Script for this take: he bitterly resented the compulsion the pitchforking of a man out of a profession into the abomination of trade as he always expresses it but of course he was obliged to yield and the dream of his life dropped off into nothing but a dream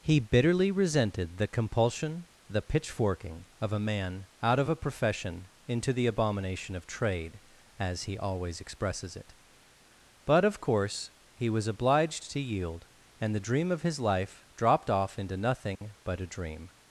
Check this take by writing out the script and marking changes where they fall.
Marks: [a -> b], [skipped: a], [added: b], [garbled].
he bitterly resented the compulsion the pitchforking of a man out of a profession into the abomination of trade as he always expresses it but of course he was obliged to yield and the dream of his life dropped off into nothing but a dream